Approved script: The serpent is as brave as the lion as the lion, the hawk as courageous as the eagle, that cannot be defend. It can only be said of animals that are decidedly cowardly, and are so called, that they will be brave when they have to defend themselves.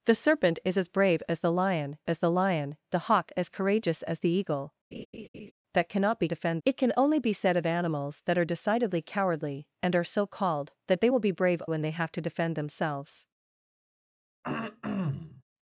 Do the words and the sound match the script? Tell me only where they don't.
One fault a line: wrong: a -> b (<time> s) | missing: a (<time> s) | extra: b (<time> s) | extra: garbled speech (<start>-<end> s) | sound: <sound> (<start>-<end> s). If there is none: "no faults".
sound: laugh (4.9-5.5 s)
sound: throat clearing (14.4-15.4 s)